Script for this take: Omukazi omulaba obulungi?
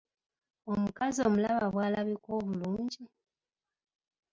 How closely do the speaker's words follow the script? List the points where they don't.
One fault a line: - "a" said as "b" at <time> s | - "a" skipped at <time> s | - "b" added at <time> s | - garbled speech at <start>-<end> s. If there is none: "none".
- "bw'alabika" added at 1.7 s